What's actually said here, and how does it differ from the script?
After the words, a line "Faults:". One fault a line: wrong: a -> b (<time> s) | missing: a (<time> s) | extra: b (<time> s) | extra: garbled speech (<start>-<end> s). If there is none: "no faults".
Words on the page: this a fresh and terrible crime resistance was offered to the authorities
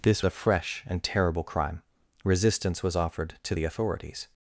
this a fresh and terrible crime resistance was offered to the authorities
Faults:
no faults